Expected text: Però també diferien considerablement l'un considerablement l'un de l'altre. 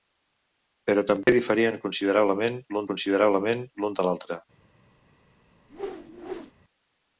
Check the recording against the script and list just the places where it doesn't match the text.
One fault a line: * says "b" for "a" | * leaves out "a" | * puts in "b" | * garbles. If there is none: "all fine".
all fine